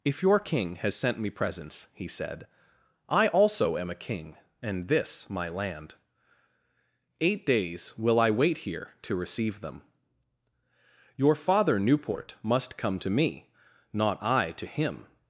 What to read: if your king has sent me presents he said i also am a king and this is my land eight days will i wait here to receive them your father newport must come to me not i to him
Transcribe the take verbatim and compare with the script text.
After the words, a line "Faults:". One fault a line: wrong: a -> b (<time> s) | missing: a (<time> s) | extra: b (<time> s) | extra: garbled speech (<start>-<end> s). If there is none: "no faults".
if your king has sent me presents he said i also am a king and this my land eight days will i wait here to receive them your father newport must come to me not i to him
Faults:
missing: is (5.3 s)